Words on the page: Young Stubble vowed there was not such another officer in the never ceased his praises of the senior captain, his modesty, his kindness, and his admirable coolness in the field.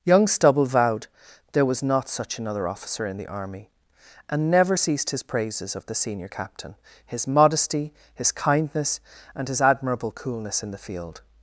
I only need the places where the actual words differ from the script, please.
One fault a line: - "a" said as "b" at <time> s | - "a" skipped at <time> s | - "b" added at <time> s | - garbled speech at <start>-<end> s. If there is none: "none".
- "army and" added at 3.3 s